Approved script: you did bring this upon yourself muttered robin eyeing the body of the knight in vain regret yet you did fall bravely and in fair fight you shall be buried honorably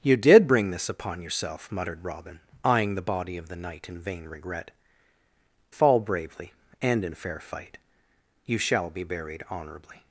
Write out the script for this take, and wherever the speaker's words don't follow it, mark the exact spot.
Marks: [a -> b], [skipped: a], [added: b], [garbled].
you did bring this upon yourself muttered robin eyeing the body of the knight in vain regret [skipped: yet you did] fall bravely and in fair fight you shall be buried honorably